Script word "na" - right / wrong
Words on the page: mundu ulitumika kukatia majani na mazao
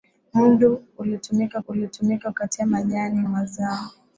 wrong